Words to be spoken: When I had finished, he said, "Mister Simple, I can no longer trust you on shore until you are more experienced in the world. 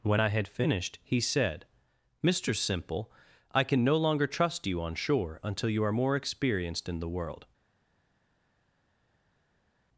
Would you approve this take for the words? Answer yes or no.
yes